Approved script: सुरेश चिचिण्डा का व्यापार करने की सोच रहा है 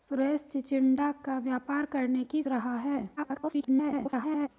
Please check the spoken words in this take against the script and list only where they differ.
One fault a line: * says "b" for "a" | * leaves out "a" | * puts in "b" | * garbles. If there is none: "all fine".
* leaves out "सोच"
* garbles